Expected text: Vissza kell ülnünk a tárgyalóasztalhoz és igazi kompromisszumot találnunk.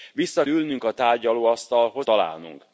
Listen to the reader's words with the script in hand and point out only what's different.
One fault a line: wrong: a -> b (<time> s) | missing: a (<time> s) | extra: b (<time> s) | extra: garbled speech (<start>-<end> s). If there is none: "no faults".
missing: kell (0.5 s)
missing: és igazi kompromisszumot (2.1 s)